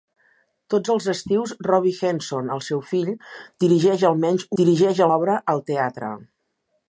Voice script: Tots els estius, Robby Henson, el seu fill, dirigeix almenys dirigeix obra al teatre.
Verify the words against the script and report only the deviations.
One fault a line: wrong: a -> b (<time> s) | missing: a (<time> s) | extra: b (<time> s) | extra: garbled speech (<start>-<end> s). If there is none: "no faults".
no faults